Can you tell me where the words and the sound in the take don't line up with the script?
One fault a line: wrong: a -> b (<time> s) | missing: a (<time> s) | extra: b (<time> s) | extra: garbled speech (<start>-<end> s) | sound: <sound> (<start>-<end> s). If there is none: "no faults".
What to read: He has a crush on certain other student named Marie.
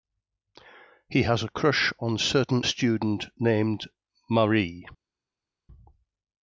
missing: other (2.6 s)